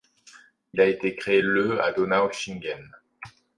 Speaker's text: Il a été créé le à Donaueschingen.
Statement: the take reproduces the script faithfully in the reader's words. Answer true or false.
true